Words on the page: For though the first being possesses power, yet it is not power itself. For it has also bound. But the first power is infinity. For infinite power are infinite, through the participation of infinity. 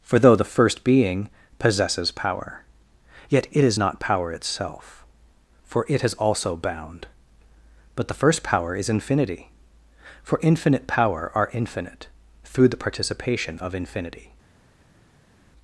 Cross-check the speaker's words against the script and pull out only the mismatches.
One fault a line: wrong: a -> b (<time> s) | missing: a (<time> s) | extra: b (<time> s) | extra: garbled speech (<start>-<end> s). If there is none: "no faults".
no faults